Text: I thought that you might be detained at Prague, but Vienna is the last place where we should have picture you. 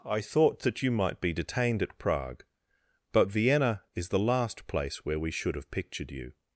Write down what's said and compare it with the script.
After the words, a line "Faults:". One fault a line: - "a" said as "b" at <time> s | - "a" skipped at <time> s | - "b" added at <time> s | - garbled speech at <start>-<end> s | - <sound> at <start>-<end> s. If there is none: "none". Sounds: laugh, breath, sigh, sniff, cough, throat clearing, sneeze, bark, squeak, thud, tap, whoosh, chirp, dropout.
I thought that you might be detained at Prague, but Vienna is the last place where we should have pictured you.
Faults:
- "picture" said as "pictured" at 5.7 s